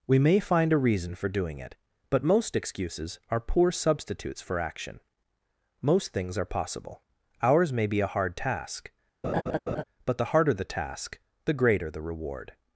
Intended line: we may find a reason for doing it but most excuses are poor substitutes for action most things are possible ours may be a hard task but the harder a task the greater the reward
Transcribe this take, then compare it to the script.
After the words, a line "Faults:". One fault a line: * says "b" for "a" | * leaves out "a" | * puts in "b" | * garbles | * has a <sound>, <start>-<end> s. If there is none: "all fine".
we may find a reason for doing it but most excuses are poor substitutes for action most things are possible ours may be a hard task but the harder the task the greater the reward
Faults:
* has a laugh, 9.2-9.8 s
* says "the" for "a"